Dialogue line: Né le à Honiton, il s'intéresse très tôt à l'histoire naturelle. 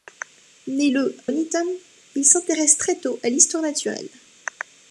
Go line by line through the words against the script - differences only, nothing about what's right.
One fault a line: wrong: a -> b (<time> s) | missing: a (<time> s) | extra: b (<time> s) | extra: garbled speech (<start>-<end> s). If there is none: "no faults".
missing: à (1.2 s)